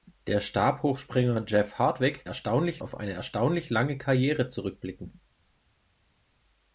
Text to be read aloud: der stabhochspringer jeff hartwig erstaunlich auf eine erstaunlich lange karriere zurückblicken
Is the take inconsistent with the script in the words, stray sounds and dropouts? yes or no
no